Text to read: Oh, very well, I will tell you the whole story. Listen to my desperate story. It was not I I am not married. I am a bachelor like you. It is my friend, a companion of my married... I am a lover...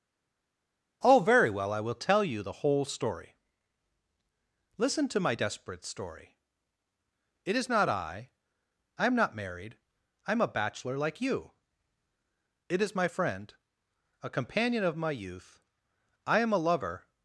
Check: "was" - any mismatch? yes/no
yes